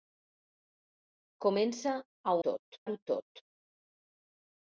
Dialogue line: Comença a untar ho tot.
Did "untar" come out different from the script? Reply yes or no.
yes